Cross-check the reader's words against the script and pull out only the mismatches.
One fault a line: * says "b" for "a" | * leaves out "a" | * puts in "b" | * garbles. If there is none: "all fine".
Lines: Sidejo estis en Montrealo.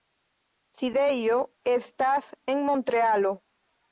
* says "estas" for "estis"